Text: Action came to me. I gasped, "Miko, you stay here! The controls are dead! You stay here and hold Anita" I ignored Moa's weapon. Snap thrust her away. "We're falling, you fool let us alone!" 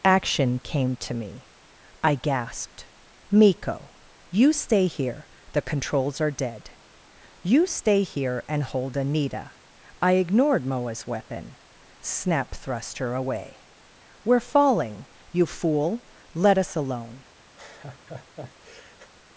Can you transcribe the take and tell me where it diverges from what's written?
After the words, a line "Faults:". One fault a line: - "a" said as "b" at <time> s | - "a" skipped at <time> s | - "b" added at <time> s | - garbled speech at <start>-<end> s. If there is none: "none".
Action came to me. I gasped, "Miko, you stay here! The controls are dead! You stay here and hold Anita" I ignored Moa's weapon. Snap thrust her away. "We're falling, you fool let us alone!"
Faults:
none